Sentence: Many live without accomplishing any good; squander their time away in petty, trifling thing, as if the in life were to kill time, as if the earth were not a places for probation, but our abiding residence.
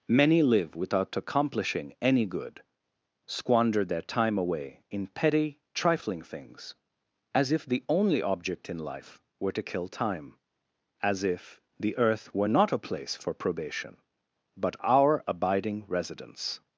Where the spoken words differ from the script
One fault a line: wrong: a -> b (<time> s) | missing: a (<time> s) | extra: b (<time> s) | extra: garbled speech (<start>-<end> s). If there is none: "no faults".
wrong: thing -> things (6.2 s)
extra: only object (7.9 s)
wrong: places -> place (12.8 s)